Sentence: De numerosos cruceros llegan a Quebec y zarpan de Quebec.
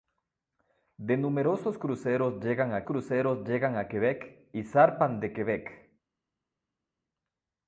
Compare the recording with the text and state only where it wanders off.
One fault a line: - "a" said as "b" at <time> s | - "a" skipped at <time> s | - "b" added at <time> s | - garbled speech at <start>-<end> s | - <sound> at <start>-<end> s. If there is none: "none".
- "cruceros llegan a" added at 2.8 s